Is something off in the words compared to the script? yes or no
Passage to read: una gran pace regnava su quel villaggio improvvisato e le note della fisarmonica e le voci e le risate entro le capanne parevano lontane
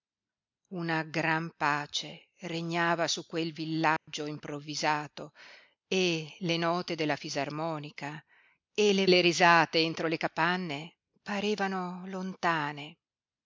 yes